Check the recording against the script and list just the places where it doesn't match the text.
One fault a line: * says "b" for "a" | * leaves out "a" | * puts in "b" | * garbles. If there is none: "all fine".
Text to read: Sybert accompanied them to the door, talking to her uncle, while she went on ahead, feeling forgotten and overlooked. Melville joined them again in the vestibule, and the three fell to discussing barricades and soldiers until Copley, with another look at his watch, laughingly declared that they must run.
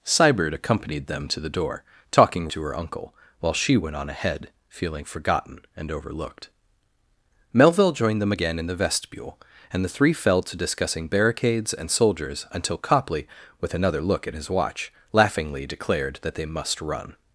all fine